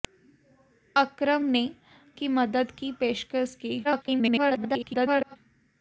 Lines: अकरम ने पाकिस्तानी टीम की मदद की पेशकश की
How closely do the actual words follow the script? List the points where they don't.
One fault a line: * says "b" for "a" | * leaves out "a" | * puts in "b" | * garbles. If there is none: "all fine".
* leaves out "पाकिस्तानी टीम"
* garbles